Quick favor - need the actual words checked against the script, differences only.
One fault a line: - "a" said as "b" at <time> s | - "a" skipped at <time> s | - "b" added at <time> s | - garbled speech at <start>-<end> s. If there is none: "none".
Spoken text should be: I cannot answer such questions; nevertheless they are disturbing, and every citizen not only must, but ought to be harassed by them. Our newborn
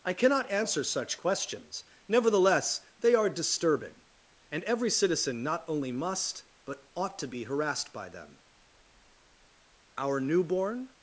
none